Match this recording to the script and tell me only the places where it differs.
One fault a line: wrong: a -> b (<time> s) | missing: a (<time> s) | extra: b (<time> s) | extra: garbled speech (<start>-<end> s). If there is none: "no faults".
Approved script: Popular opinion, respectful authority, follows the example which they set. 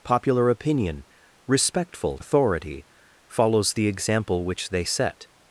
no faults